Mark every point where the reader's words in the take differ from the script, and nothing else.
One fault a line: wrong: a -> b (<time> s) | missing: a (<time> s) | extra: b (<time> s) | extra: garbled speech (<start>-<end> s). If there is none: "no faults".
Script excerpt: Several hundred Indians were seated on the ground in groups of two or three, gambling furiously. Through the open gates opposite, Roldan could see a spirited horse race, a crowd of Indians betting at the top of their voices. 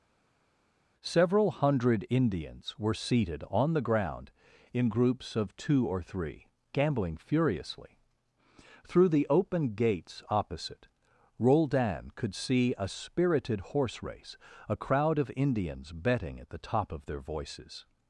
no faults